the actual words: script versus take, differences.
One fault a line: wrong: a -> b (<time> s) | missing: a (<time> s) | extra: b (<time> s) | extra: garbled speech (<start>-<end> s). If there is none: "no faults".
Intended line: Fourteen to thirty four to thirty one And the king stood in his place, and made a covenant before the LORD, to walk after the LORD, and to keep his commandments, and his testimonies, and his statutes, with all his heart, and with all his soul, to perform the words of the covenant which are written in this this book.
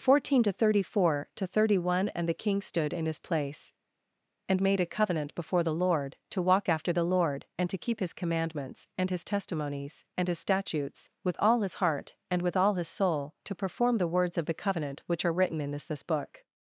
no faults